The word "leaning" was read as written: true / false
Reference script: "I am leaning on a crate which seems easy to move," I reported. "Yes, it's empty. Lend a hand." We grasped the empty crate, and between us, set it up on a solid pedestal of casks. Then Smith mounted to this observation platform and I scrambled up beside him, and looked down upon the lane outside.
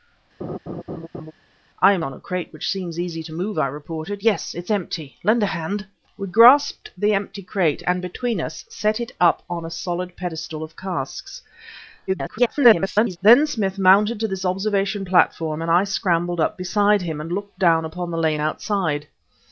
false